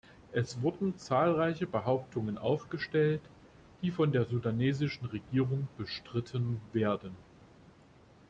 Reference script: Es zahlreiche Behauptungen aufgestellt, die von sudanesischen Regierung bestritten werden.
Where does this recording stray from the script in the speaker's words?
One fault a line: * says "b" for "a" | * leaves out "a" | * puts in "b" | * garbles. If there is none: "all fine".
* puts in "wurden"
* puts in "der"